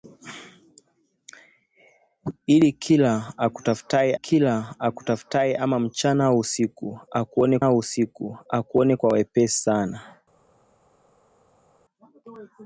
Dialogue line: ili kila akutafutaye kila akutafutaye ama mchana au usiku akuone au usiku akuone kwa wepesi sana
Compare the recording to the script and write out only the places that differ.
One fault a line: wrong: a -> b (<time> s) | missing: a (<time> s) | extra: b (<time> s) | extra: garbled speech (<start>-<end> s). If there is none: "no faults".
no faults